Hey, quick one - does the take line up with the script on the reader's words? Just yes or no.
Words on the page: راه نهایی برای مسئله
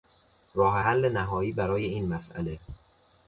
no